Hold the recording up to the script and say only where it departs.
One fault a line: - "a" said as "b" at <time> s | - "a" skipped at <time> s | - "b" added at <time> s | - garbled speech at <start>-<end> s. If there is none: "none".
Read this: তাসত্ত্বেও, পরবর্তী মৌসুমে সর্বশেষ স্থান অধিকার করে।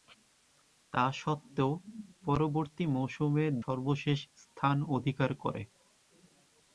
none